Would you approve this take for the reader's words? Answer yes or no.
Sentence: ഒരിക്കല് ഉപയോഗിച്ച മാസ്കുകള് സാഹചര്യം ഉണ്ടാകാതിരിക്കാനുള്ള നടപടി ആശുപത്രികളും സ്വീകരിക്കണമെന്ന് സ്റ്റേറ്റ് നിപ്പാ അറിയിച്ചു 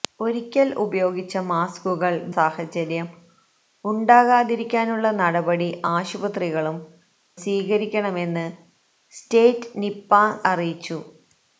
yes